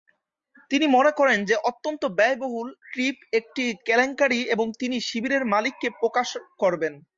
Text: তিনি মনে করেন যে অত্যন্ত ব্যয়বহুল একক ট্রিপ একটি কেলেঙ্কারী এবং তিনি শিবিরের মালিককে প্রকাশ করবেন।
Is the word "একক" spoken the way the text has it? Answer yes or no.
no